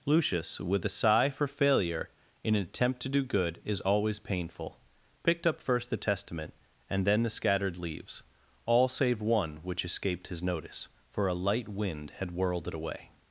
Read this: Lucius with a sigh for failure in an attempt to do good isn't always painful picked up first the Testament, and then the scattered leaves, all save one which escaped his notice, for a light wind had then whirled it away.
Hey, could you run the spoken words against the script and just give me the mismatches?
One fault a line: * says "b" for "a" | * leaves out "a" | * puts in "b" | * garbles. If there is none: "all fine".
* says "is" for "isn't"
* leaves out "then"